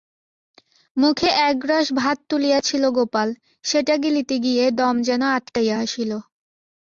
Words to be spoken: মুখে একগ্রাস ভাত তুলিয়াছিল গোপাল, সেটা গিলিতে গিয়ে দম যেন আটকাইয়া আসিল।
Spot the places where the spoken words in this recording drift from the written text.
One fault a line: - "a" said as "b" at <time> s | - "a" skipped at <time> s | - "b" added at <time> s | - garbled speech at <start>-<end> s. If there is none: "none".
none